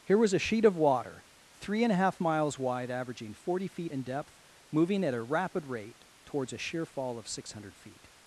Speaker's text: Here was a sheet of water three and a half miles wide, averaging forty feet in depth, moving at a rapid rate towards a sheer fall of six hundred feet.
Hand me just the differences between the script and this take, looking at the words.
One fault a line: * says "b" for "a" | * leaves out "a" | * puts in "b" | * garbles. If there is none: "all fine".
all fine